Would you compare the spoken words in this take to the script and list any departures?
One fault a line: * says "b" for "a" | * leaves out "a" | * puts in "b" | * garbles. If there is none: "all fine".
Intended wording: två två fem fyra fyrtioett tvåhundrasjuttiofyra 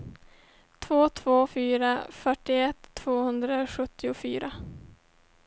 * leaves out "fem"